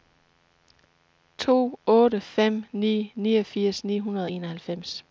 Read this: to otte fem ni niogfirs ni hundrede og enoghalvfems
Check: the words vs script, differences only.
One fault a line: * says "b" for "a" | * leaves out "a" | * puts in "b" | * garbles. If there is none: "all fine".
all fine